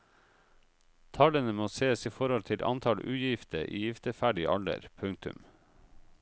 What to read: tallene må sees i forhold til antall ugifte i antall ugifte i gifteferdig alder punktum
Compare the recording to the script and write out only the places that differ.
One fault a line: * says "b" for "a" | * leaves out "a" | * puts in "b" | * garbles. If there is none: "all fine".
* leaves out "antall ugifte i"